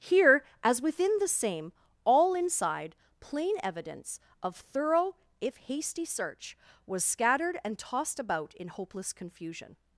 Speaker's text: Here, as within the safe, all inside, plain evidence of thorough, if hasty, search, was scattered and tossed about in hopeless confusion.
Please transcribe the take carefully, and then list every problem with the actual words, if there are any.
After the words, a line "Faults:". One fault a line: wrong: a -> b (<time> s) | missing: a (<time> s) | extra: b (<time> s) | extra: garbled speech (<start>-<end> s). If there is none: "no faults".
Here, as within the same, all inside, plain evidence of thorough, if hasty, search, was scattered and tossed about in hopeless confusion.
Faults:
wrong: safe -> same (1.3 s)